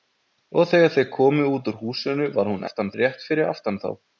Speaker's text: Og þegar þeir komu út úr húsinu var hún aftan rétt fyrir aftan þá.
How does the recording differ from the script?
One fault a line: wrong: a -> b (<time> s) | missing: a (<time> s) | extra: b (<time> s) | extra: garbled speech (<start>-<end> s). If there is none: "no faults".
no faults